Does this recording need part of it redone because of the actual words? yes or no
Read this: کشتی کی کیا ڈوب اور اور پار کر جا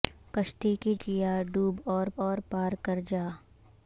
no